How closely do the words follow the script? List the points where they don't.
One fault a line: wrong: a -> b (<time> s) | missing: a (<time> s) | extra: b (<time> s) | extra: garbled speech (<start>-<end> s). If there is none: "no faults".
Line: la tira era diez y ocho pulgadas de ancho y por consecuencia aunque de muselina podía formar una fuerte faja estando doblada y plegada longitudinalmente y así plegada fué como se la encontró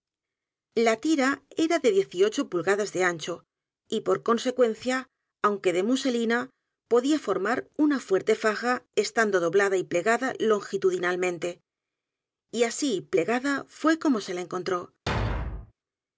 extra: de (1.8 s)